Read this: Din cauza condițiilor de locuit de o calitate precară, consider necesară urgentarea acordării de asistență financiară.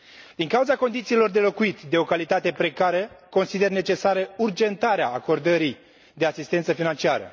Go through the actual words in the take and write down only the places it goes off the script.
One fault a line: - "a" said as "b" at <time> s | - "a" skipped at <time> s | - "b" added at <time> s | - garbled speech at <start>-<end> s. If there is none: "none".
none